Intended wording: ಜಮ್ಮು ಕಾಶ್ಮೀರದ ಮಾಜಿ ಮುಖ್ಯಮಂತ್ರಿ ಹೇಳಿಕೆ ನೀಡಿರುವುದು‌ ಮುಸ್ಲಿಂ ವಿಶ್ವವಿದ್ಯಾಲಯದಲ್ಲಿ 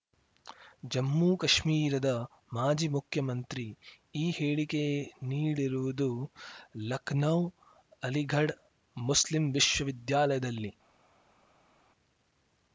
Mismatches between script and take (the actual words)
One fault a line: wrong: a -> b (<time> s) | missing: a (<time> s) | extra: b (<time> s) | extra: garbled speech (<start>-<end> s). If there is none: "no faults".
extra: ಈ (4.2 s)
extra: ಲಖನೌ ಅಲಿಘಡ್ (6.9 s)